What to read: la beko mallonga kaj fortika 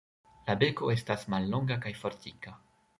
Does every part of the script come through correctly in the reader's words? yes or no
no